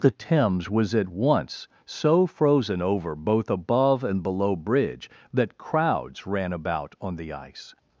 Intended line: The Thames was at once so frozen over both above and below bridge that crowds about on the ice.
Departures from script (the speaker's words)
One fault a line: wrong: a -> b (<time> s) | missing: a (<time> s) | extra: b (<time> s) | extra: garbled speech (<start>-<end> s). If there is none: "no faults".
extra: ran (6.2 s)